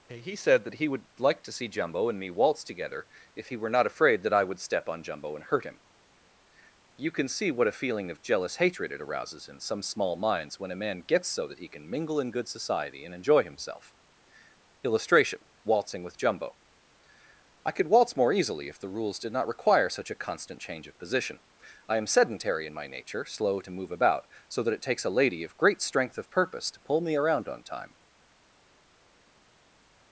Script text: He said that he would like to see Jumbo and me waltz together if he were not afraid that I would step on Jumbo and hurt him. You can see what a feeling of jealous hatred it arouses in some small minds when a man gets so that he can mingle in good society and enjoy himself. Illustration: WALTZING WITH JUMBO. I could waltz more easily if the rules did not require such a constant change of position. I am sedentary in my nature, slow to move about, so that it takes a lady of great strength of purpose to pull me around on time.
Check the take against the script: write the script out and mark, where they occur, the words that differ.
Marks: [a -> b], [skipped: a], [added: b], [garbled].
He said that he would like to see Jumbo and me waltz together if he were not afraid that I would step on Jumbo and hurt him. You can see what a feeling of jealous hatred it arouses in some small minds when a man gets so that he can mingle in good society and enjoy himself. Illustration: WALTZING WITH JUMBO. I could waltz more easily if the rules did not require such a constant change of position. I am sedentary in my nature, slow to move about, so that it takes a lady of great strength of purpose to pull me around on time.